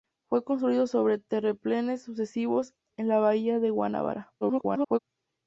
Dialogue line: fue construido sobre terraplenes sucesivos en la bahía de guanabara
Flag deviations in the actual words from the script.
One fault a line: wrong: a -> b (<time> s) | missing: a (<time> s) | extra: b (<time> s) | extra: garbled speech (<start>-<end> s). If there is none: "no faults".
extra: garbled speech (4.4-5.0 s)